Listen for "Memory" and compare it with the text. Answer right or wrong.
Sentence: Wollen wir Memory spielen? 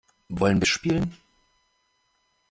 wrong